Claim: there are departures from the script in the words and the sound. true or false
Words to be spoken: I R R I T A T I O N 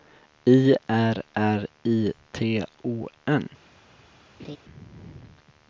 true